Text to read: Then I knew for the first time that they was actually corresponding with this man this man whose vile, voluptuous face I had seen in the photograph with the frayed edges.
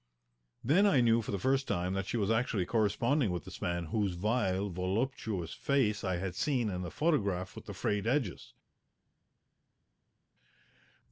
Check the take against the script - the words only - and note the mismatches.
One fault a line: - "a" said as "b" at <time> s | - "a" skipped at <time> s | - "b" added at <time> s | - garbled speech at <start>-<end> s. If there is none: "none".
- "they" said as "she" at 2.1 s
- "this man" skipped at 3.9 s